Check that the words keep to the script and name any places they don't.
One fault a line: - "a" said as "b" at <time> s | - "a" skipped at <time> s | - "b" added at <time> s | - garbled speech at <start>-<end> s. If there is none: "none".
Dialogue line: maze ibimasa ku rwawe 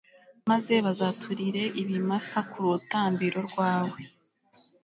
- "bazaturire" added at 0.8 s
- "rutambiro" added at 2.7 s